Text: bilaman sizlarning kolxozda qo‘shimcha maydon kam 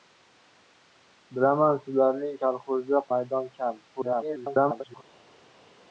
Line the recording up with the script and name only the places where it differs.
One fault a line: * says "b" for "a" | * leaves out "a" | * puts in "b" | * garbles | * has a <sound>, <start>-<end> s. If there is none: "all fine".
* leaves out "qo‘shimcha"
* garbles